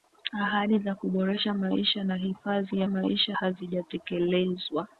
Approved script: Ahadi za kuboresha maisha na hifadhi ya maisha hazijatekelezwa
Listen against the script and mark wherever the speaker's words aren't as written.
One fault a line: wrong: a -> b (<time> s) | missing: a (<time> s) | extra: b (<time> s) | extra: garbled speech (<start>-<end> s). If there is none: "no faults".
no faults